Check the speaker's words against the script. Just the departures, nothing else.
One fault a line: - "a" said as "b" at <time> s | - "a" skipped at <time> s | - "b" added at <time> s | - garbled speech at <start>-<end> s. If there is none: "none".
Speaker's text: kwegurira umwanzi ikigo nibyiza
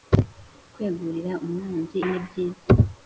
- "ikigo" skipped at 2.0 s